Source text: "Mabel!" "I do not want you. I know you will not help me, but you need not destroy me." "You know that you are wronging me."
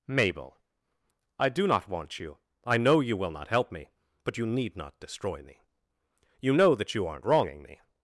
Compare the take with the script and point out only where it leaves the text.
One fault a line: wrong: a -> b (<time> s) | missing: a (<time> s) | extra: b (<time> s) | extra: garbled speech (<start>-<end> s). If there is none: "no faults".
wrong: are -> aren't (7.1 s)